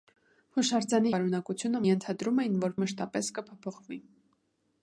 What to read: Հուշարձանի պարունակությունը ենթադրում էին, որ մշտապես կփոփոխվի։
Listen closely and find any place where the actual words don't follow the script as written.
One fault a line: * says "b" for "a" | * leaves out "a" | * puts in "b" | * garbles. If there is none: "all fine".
all fine